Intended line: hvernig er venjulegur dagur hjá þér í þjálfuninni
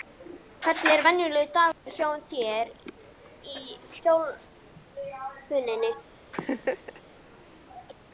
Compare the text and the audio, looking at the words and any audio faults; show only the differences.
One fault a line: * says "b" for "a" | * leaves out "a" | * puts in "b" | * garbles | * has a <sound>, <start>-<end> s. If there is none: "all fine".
* has a dropout, 1.7-1.9 s
* has a laugh, 6.3-7.0 s